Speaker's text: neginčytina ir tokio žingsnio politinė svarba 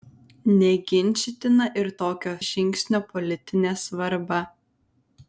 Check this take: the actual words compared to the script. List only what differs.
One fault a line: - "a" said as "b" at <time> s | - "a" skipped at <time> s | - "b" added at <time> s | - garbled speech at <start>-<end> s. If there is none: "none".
none